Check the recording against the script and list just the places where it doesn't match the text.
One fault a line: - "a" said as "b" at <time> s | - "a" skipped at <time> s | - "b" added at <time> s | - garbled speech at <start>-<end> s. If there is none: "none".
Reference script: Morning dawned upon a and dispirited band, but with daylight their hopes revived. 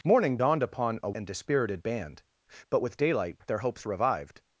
none